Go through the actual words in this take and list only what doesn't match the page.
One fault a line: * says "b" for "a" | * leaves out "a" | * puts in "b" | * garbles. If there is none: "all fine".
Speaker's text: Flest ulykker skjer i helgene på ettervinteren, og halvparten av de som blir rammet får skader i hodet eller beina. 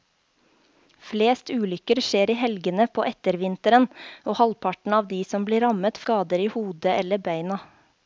* leaves out "får"